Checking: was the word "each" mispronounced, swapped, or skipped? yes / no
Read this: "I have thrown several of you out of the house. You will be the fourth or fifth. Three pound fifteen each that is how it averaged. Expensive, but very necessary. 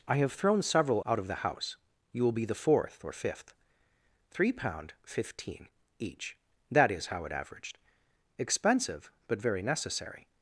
no